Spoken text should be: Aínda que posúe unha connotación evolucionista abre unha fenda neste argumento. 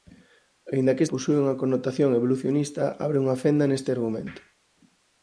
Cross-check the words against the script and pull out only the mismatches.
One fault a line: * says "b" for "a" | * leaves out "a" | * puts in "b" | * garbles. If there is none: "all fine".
all fine